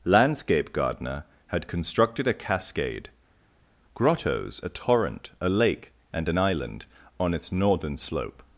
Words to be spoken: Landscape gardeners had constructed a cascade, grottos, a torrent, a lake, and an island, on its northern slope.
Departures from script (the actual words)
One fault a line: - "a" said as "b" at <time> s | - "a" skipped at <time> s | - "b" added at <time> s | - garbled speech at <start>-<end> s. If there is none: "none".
- "gardeners" said as "gardener" at 0.7 s